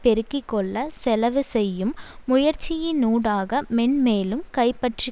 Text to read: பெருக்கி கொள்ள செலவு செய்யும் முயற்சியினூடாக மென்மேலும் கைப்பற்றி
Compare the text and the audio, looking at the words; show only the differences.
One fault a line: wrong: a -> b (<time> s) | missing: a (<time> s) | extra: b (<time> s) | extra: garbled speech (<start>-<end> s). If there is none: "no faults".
no faults